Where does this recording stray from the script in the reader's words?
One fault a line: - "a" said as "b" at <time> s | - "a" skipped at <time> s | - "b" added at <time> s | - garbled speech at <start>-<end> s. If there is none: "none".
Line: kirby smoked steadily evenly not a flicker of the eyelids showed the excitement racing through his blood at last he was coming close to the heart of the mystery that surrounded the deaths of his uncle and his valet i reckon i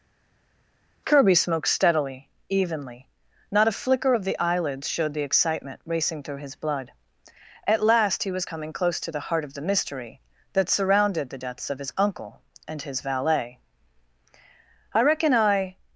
none